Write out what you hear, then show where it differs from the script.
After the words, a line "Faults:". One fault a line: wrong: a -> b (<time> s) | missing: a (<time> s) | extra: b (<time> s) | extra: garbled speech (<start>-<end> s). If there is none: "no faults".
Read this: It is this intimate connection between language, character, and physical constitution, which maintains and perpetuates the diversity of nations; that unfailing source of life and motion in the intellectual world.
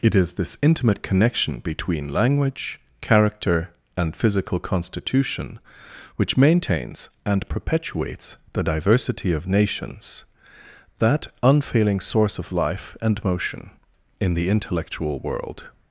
It is this intimate connection between language, character, and physical constitution, which maintains and perpetuates the diversity of nations; that unfailing source of life and motion in the intellectual world.
Faults:
no faults